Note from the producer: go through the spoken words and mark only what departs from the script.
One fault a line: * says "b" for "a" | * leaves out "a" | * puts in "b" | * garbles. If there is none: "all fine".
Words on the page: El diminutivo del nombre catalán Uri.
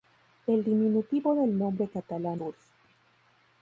all fine